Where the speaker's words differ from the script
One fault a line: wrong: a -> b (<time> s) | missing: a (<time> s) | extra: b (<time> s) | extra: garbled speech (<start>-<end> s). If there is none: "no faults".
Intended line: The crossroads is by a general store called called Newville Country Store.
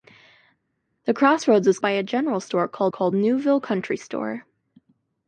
no faults